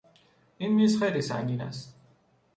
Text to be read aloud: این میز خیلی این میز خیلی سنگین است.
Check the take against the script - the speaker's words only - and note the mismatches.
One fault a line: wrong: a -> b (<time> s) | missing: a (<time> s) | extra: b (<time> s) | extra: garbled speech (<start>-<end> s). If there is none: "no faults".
missing: این میز خیلی (1.2 s)